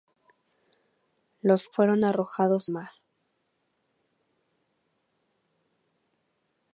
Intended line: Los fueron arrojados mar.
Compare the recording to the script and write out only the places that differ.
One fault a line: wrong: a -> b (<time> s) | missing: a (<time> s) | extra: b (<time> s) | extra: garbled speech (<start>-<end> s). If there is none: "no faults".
no faults